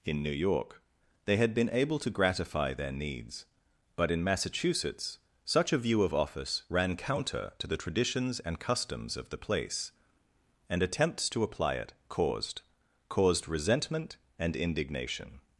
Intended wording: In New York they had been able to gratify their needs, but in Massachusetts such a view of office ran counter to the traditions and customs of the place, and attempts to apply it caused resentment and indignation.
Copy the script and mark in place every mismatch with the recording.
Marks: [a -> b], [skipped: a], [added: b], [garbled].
In New York they had been able to gratify their needs, but in Massachusetts such a view of office ran counter to the traditions and customs of the place, and attempts to apply it caused [added: caused] resentment and indignation.